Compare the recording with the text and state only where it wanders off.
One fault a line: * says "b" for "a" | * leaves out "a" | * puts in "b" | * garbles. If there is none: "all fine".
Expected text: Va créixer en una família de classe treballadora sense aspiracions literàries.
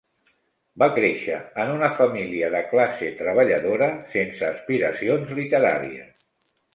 all fine